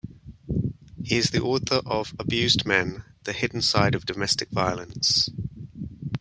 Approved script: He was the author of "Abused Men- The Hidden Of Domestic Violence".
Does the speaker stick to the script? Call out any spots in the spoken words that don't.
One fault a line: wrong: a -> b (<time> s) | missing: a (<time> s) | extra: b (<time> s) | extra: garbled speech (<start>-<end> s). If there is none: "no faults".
wrong: was -> is (1.2 s)
extra: Side (3.6 s)